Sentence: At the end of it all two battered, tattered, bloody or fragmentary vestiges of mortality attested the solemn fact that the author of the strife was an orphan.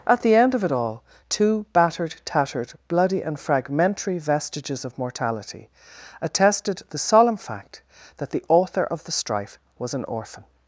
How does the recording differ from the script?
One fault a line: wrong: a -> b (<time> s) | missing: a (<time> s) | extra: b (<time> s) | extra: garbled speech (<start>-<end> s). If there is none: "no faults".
wrong: or -> and (3.2 s)